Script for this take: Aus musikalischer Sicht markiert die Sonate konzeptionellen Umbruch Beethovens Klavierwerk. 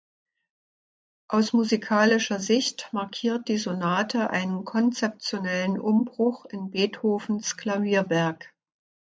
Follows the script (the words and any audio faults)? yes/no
no